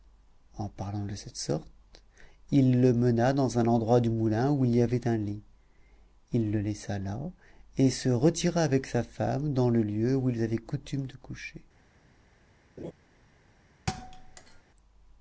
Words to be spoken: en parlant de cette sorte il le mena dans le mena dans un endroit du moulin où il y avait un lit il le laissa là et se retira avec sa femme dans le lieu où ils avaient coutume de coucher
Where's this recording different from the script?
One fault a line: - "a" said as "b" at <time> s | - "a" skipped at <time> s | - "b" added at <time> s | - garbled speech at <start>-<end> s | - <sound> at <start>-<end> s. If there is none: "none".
- "le mena dans" skipped at 3.6 s
- laugh at 12.8-12.9 s
- thud at 13.9-14.6 s